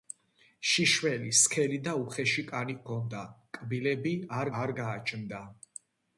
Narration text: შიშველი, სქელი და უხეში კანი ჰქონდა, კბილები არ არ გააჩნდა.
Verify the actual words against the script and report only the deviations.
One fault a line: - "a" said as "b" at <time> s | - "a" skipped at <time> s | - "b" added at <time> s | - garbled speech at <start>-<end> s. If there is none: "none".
none